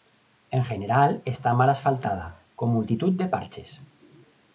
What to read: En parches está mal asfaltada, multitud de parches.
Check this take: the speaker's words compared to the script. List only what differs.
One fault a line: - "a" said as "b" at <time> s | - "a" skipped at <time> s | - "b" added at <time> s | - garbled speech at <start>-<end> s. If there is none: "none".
- "parches" said as "general" at 0.6 s
- "con" added at 2.5 s